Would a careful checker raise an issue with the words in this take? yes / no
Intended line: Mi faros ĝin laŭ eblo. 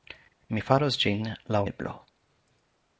no